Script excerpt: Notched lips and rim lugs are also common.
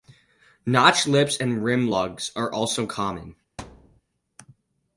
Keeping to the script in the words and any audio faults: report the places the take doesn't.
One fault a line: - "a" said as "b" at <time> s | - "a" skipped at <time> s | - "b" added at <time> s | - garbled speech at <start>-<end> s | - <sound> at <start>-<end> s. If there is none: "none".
- thud at 3.6-4.0 s